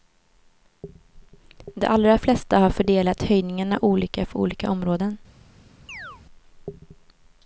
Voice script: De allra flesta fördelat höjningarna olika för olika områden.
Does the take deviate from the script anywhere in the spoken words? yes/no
yes